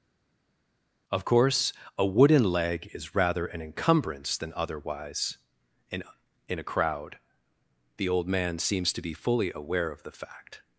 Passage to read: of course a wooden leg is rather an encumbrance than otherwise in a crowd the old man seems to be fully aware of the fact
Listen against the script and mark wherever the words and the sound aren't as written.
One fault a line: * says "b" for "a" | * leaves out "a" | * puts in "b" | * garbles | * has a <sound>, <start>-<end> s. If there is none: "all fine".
* puts in "in"